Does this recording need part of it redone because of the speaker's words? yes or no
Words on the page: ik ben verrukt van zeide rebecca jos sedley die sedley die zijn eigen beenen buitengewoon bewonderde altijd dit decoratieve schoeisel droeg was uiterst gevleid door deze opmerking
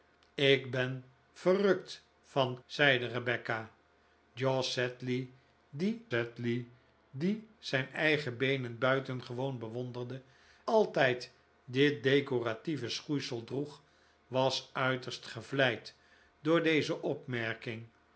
no